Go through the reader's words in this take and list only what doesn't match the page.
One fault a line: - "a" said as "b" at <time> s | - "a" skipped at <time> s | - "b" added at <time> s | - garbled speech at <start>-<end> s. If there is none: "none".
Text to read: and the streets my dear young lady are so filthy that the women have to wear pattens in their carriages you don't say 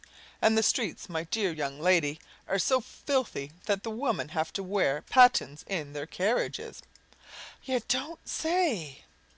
none